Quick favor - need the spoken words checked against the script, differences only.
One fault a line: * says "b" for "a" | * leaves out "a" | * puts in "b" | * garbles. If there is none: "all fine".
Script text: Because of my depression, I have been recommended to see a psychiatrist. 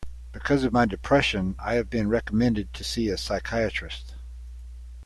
all fine